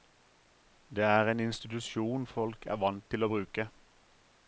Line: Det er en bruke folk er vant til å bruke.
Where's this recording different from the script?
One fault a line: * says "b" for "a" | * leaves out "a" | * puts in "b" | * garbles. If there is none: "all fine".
* says "institusjon" for "bruke"